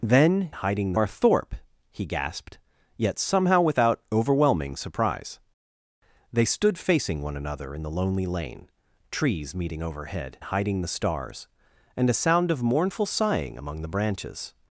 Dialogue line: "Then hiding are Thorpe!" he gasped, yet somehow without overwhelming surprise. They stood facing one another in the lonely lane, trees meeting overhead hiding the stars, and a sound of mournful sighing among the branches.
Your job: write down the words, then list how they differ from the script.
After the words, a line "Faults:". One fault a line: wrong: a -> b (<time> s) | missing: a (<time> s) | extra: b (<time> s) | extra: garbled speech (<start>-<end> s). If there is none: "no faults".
"Then hiding are Thorpe!" he gasped, yet somehow without overwhelming surprise. They stood facing one another in the lonely lane, trees meeting overhead hiding the stars, and a sound of mournful sighing among the branches.
Faults:
no faults